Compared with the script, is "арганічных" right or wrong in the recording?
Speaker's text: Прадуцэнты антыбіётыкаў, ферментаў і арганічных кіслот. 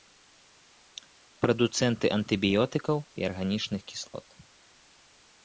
right